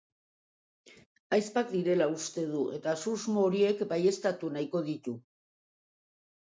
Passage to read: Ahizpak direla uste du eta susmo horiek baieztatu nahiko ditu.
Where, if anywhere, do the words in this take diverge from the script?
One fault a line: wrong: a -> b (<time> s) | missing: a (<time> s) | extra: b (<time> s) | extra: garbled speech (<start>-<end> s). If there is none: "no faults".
no faults